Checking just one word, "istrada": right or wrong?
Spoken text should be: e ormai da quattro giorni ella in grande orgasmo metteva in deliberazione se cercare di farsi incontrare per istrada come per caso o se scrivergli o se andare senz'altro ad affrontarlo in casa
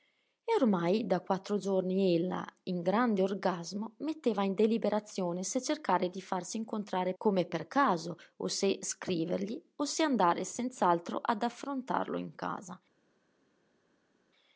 wrong